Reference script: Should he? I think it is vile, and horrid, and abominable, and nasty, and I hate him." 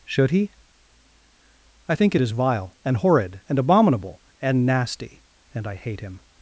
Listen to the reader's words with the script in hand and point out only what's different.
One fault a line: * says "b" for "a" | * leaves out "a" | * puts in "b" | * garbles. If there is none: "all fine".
all fine